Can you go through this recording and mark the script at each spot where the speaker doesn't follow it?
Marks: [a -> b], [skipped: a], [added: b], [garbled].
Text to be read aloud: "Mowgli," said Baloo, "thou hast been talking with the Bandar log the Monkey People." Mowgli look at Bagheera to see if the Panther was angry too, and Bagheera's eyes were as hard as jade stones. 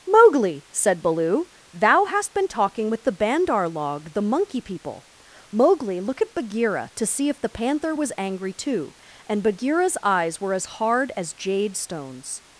"Mowgli," said Baloo, "thou hast been talking with the Bandar log the Monkey People." Mowgli look at Bagheera to see if the Panther was angry too, and Bagheera's eyes were as hard as jade stones.